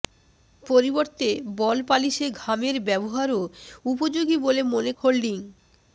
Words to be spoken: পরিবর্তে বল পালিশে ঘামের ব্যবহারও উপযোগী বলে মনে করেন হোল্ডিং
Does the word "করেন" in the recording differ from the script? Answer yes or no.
yes